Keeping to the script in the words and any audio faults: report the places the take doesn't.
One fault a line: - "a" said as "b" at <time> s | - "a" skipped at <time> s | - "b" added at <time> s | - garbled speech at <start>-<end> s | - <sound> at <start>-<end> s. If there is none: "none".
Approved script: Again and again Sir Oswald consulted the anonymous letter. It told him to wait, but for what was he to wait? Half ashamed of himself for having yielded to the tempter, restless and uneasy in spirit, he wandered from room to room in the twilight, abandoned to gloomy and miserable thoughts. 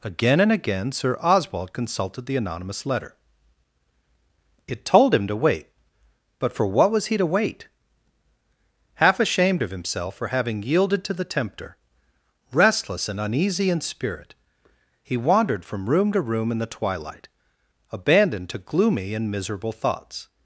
none